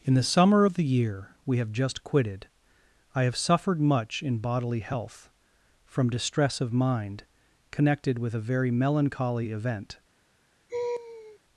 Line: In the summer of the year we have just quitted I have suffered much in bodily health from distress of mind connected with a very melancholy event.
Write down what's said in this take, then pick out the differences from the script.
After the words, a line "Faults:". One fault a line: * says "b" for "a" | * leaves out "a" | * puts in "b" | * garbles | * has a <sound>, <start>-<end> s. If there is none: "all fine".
In the summer of the year we have just quitted I have suffered much in bodily health from distress of mind connected with a very melancholy event.
Faults:
* has a laugh, 10.7-11.4 s